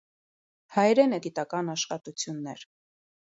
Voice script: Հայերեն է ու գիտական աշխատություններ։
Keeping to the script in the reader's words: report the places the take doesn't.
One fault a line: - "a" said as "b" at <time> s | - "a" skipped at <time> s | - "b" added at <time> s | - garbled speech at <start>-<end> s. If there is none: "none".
none